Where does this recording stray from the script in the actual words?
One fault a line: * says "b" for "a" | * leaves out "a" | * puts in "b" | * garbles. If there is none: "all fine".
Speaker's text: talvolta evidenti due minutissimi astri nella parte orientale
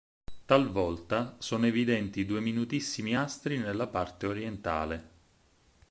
* puts in "sono"